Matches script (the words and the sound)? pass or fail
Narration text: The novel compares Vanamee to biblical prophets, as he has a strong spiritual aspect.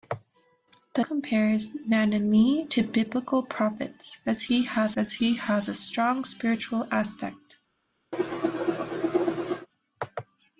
fail